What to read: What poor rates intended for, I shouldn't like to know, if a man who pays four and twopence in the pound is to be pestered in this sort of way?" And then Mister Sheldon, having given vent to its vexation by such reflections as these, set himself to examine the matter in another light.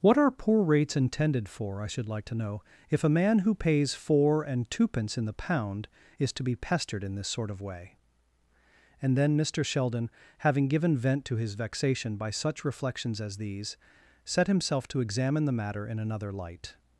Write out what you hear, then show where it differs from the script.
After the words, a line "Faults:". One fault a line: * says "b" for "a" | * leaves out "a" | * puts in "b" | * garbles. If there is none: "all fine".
What are poor rates intended for, I should like to know, if a man who pays four and twopence in the pound is to be pestered in this sort of way?" And then Mister Sheldon, having given vent to his vexation by such reflections as these, set himself to examine the matter in another light.
Faults:
* puts in "are"
* says "should" for "shouldn't"
* says "his" for "its"